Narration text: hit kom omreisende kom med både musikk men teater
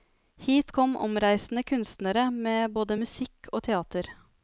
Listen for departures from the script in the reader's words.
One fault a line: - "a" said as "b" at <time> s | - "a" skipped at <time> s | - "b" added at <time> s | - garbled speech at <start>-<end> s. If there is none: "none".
- "kom" said as "kunstnere" at 1.6 s
- "men" said as "og" at 3.5 s